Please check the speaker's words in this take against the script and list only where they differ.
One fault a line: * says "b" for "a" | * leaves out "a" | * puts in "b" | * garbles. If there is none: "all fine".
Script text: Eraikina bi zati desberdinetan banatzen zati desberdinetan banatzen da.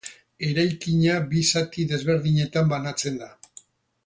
* leaves out "zati desberdinetan banatzen"